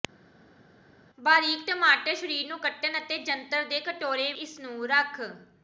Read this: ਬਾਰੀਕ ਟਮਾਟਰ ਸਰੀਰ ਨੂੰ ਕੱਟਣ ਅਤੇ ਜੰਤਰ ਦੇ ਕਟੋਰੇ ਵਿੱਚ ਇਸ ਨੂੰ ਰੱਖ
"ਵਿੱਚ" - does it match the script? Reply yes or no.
no